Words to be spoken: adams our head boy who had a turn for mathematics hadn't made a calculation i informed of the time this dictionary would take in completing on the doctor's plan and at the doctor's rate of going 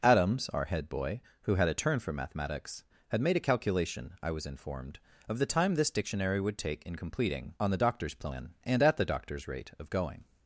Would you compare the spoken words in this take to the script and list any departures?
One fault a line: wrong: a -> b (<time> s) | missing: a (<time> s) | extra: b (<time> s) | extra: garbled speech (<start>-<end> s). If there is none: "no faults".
wrong: hadn't -> had (3.1 s)
extra: was (4.3 s)